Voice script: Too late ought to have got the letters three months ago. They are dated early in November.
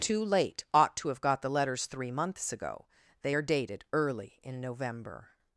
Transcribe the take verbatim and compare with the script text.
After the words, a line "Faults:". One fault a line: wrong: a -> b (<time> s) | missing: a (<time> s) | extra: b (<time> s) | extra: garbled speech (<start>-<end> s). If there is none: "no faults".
Too late ought to have got the letters three months ago. They are dated early in November.
Faults:
no faults